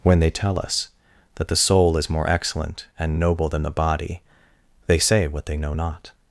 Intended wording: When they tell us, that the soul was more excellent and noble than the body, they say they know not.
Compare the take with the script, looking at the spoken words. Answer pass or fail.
fail